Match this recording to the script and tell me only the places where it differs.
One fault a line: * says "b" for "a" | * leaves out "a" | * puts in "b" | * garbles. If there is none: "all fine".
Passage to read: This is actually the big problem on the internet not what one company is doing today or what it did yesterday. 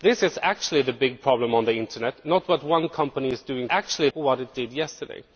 * says "actually" for "today"